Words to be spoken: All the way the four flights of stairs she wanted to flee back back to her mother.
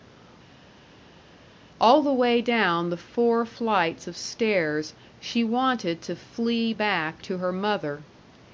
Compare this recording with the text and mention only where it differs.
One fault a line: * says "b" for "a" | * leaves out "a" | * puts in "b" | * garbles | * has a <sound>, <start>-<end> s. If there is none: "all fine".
* puts in "down"
* leaves out "back"